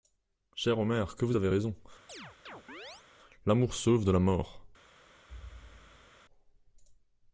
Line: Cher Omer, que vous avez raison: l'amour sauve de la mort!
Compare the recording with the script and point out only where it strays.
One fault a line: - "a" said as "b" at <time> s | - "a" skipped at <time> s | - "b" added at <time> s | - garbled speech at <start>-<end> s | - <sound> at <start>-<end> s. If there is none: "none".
- chirp at 2.1-3.0 s
- thud at 5.3-6.1 s